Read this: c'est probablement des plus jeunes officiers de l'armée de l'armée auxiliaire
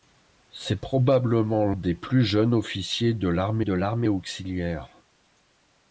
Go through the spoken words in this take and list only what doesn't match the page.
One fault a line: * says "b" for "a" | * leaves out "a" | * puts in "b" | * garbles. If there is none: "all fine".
all fine